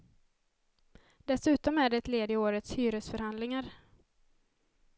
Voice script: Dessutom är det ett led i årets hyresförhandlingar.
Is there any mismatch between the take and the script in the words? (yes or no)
no